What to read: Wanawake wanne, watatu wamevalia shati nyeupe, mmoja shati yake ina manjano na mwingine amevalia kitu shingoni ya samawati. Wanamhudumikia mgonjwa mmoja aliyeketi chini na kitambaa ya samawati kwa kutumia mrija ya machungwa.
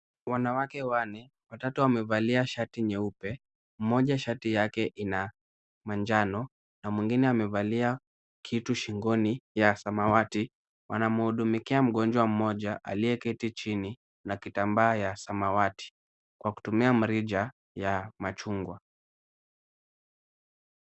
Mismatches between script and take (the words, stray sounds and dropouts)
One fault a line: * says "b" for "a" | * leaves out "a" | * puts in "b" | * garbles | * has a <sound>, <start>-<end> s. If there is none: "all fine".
all fine